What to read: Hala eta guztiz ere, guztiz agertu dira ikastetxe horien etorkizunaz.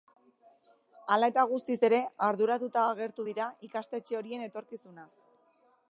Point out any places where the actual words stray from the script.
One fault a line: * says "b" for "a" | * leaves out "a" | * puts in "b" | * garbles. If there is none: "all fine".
* says "arduratuta" for "guztiz"